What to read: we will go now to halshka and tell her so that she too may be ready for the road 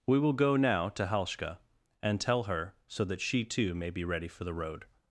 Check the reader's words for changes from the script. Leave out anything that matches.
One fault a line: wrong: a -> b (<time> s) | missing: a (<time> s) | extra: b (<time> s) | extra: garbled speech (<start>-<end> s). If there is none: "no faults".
no faults